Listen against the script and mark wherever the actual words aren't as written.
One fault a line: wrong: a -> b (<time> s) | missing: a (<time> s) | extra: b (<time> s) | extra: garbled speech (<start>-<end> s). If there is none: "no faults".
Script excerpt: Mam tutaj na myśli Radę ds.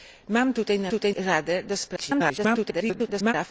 wrong: myśli -> tutaj (0.9 s)
extra: garbled speech (2.0-3.3 s)